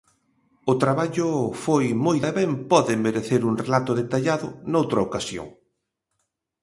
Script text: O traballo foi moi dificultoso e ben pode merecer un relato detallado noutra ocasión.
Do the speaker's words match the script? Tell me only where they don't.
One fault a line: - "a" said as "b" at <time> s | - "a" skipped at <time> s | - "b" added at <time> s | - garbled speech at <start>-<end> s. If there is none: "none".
- "dificultoso" skipped at 2.2 s